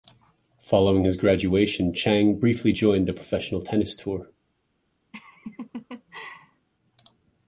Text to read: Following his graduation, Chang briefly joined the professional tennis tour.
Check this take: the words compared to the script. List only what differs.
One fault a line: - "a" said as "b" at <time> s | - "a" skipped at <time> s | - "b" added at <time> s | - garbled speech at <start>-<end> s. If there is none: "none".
none